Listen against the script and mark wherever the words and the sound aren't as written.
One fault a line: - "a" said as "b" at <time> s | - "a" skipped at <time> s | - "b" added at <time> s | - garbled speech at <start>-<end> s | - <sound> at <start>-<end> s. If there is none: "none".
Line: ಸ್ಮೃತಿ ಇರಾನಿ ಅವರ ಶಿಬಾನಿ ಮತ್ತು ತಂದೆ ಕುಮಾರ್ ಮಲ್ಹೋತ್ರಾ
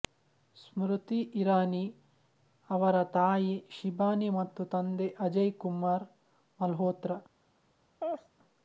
- "ತಾಯಿ" added at 3.1 s
- "ಅಜಯ್" added at 5.2 s
- laugh at 8.0-8.3 s